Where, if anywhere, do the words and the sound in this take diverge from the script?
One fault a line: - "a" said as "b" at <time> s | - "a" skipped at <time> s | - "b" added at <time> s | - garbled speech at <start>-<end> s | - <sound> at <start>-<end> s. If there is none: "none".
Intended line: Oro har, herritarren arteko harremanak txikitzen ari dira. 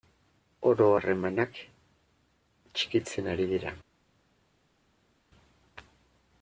- "har herritarren arteko" skipped at 0.8 s